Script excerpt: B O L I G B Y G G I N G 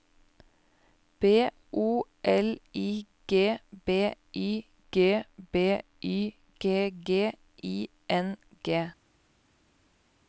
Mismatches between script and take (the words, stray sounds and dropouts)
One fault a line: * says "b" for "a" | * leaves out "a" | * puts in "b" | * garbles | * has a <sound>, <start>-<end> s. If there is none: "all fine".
* puts in "B Y G"